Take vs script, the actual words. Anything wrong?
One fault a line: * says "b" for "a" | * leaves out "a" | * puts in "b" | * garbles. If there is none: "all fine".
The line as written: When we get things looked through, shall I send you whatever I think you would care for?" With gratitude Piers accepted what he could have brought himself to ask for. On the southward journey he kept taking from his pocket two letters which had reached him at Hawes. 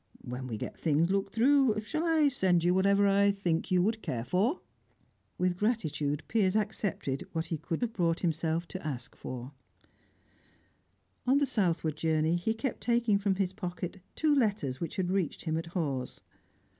all fine